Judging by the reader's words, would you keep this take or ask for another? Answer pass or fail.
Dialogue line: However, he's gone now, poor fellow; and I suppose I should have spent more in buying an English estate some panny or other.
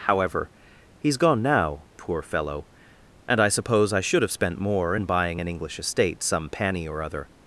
pass